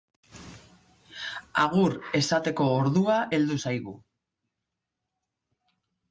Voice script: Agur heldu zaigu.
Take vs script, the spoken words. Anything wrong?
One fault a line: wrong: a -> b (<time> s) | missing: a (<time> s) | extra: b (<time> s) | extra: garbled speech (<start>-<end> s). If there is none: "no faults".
extra: esateko ordua (2.2 s)